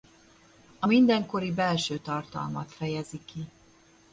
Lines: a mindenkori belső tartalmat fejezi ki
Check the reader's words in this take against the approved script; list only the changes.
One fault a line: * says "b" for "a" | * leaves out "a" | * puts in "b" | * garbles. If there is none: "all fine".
all fine